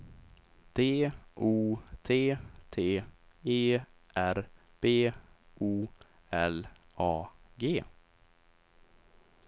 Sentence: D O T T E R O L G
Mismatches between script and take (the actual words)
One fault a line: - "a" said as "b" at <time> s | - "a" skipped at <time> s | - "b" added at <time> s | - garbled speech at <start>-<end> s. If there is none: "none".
- "B" added at 4.8 s
- "A" added at 7.0 s